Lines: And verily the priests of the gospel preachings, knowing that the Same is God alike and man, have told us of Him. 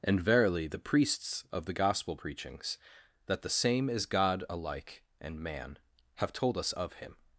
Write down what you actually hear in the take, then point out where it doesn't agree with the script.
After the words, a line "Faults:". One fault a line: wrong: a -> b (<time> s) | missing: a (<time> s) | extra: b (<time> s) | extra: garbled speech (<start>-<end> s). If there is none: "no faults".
And verily the priests of the gospel preachings, that the Same is God alike and man, have told us of Him.
Faults:
missing: knowing (2.8 s)